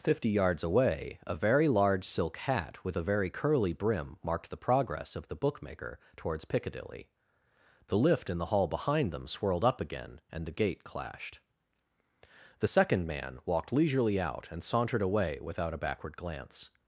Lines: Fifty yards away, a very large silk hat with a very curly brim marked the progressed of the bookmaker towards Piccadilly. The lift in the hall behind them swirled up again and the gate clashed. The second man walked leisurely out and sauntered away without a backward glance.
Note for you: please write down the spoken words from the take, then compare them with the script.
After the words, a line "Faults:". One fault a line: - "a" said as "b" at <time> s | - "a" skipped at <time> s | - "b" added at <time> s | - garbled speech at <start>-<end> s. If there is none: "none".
Fifty yards away, a very large silk hat with a very curly brim marked the progress of the bookmaker towards Piccadilly. The lift in the hall behind them swirled up again and the gate clashed. The second man walked leisurely out and sauntered away without a backward glance.
Faults:
- "progressed" said as "progress" at 4.6 s